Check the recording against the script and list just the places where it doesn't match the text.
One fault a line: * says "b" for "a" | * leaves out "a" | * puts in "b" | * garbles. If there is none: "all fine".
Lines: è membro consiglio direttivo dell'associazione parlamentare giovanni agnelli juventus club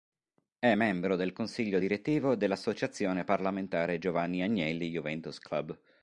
* puts in "del"